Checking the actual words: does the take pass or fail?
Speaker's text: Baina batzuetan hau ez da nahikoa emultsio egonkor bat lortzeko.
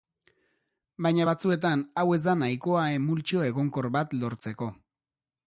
pass